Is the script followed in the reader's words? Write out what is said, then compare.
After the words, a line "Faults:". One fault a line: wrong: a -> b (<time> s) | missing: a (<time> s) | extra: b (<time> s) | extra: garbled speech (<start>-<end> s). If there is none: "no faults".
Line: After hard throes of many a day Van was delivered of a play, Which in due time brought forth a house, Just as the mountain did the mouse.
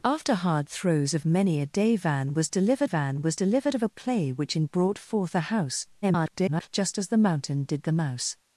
After hard throes of many a day Van was delivered Van was delivered of a play, Which in brought forth a house, [garbled] Just as the mountain did the mouse.
Faults:
extra: Van was delivered (2.8 s)
missing: due time (4.7 s)
extra: garbled speech (6.0-6.7 s)